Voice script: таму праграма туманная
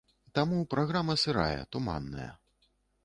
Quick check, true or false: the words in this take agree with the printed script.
false